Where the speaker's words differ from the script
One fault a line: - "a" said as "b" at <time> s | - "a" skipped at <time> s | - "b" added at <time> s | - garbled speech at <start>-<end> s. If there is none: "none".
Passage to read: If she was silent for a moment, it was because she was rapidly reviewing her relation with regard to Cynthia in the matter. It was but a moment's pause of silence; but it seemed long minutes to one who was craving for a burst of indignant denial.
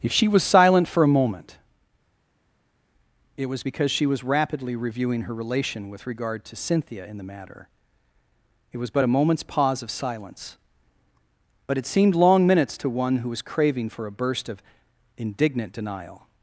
none